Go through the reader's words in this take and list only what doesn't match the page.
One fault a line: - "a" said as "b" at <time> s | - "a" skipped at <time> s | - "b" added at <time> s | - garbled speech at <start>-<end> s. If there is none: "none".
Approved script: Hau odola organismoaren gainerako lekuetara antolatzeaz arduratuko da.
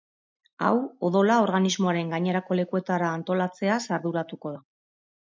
none